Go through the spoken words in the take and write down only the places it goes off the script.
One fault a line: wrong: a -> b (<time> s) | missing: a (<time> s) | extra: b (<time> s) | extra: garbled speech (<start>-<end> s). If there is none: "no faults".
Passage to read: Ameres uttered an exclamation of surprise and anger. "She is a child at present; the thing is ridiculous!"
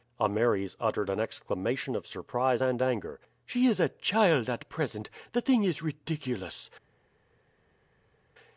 no faults